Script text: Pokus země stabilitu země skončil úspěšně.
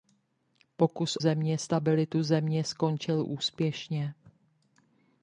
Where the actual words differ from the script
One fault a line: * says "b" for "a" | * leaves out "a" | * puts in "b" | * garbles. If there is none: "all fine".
all fine